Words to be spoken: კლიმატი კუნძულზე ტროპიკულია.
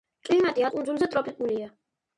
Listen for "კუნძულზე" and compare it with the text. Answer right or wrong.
right